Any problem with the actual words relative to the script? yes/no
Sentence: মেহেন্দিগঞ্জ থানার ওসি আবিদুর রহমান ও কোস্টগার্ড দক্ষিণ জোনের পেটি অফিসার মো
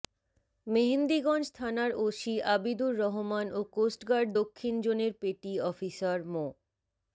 no